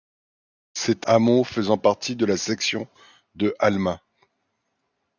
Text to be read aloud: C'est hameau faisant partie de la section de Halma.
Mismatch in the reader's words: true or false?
false